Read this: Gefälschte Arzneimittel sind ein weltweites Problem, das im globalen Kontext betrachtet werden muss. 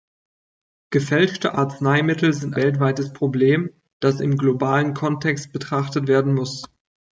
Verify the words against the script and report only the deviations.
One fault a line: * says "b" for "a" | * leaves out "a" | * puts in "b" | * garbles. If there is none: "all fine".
* leaves out "ein"